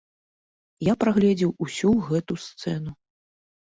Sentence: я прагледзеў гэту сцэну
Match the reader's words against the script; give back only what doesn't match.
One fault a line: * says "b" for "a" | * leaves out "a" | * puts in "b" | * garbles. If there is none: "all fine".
* puts in "усю"